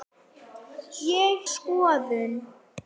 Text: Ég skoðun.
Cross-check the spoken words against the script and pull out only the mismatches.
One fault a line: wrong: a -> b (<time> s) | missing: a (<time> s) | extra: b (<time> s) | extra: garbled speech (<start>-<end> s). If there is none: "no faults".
no faults